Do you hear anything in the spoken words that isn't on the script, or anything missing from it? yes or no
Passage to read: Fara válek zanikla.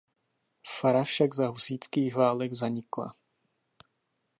yes